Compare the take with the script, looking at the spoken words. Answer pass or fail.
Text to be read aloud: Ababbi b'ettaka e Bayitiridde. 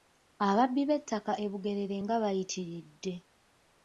fail